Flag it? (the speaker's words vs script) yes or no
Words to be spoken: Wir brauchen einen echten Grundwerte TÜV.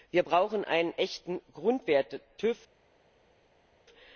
no